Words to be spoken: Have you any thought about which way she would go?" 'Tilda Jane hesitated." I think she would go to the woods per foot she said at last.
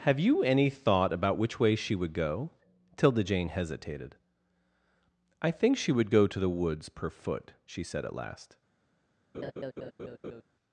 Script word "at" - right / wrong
right